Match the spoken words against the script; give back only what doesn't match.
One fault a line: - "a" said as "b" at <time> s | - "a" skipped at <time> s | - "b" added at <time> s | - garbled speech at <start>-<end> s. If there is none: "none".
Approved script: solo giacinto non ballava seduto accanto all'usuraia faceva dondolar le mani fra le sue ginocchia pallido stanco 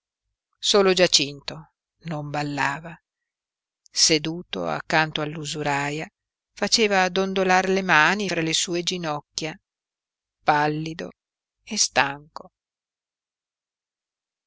- "e" added at 11.6 s